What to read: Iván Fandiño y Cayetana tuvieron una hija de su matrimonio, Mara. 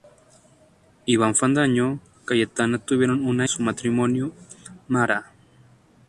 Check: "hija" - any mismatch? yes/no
yes